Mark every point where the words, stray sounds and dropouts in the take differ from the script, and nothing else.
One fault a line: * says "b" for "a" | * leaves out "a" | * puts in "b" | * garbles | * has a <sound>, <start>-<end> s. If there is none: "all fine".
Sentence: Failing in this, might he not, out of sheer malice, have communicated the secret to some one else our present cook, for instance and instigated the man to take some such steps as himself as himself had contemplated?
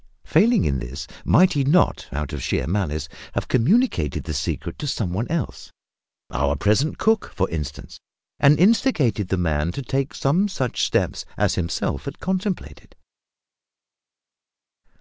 * leaves out "as himself"